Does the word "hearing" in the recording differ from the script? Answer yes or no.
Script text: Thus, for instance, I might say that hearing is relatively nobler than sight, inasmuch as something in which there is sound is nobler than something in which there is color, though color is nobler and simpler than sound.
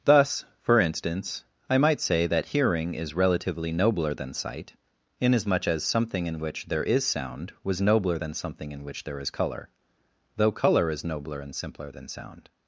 no